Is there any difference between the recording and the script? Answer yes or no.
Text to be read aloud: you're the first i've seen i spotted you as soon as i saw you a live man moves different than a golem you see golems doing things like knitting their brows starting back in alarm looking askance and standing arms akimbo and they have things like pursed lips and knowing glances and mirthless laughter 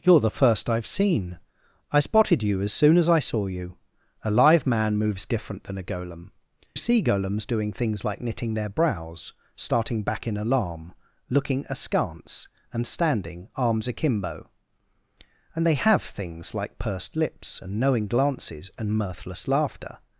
yes